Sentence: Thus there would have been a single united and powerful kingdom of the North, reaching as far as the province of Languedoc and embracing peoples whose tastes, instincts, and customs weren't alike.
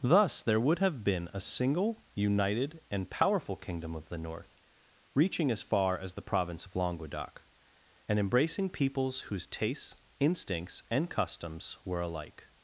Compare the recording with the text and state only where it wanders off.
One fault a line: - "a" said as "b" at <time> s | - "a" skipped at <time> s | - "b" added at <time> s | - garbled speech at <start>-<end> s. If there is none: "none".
- "weren't" said as "were" at 11.8 s